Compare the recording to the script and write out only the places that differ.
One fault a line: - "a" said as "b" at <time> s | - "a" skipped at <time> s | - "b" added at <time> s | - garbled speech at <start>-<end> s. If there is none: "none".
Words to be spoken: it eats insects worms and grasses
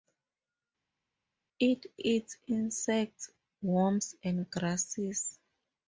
none